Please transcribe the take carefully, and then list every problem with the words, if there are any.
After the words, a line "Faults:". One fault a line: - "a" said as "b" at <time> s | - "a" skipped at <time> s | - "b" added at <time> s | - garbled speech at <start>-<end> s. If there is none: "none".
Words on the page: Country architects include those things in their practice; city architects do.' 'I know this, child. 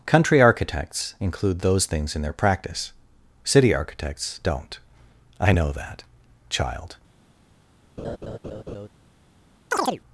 Country architects include those things in their practice; city architects don't.' 'I know that, child.
Faults:
- "do" said as "don't" at 4.4 s
- "this" said as "that" at 5.7 s